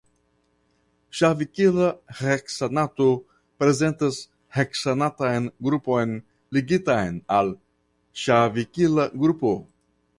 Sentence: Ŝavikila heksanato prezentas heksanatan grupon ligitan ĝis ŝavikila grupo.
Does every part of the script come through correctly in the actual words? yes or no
no